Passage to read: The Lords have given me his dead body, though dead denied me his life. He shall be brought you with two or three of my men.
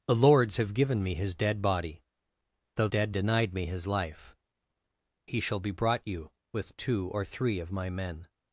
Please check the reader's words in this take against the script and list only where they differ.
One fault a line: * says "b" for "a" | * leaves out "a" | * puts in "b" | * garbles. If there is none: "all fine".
all fine